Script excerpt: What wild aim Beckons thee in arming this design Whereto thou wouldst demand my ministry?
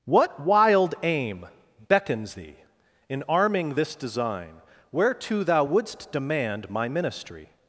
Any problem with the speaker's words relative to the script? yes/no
no